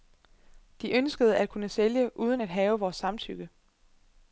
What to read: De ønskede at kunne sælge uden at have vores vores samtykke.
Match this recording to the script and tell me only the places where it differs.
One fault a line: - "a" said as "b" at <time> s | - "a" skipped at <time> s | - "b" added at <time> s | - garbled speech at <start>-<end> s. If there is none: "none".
- "vores" skipped at 3.0 s